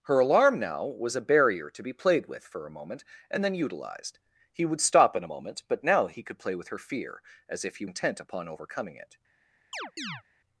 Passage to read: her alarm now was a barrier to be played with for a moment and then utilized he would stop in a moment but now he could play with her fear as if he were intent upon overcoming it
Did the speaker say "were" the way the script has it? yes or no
no